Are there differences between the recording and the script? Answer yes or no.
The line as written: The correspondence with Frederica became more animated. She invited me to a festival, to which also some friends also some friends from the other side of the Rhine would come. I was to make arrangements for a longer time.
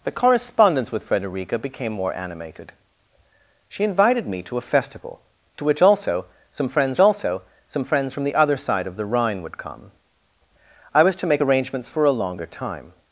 no